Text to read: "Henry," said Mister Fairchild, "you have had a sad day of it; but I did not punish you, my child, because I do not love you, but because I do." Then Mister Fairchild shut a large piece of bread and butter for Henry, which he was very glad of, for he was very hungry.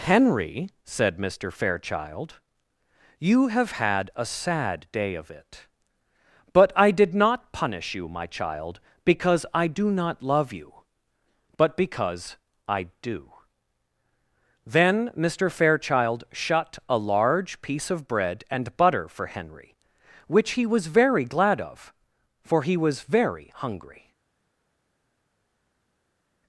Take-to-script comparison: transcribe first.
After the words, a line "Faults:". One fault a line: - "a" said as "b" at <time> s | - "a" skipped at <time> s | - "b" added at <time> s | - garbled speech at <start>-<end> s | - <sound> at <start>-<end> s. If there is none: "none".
"Henry," said Mister Fairchild, "you have had a sad day of it; but I did not punish you, my child, because I do not love you, but because I do." Then Mister Fairchild shut a large piece of bread and butter for Henry, which he was very glad of, for he was very hungry.
Faults:
none